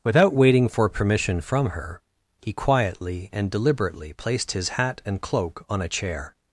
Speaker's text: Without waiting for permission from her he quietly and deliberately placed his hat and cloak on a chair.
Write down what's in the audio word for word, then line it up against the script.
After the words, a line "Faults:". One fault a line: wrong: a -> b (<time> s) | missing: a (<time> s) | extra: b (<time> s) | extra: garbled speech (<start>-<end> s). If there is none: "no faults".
Without waiting for permission from her he quietly and deliberately placed his hat and cloak on a chair.
Faults:
no faults